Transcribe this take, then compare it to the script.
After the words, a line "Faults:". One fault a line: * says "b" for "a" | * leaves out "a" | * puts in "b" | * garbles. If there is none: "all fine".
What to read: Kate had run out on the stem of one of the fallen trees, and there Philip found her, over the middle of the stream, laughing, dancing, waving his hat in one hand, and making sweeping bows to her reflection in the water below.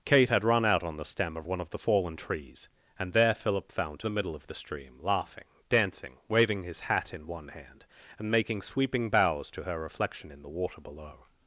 Kate had run out on the stem of one of the fallen trees, and there Philip found the middle of the stream, laughing, dancing, waving his hat in one hand, and making sweeping bows to her reflection in the water below.
Faults:
* leaves out "her over"